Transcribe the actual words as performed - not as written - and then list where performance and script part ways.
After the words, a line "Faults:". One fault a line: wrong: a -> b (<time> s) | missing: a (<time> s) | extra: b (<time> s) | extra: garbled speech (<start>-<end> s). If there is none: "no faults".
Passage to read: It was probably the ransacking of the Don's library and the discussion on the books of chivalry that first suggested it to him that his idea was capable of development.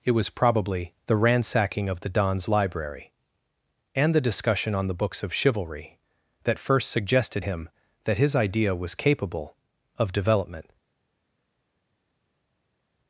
It was probably the ransacking of the Don's library and the discussion on the books of chivalry that first suggested him that his idea was capable of development.
Faults:
missing: it to (7.5 s)